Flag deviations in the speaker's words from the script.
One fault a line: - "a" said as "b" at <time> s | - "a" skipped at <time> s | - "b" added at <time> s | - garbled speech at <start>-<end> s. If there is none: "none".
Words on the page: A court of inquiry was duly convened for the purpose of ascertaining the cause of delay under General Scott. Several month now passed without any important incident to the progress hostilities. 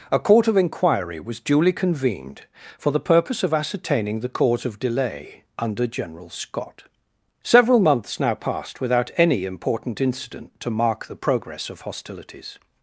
- "month" said as "months" at 7.8 s
- "mark" added at 10.7 s
- "of" added at 11.7 s